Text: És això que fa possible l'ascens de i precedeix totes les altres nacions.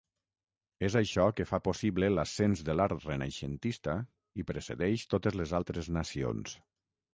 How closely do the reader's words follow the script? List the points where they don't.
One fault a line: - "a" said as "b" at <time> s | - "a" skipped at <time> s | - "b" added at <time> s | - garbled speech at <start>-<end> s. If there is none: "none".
- "l'art renaixentista" added at 2.8 s